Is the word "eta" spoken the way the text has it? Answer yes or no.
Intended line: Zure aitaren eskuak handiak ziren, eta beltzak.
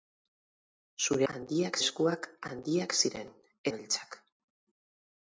no